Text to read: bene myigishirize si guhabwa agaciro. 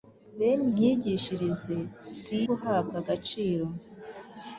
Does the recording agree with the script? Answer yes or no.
yes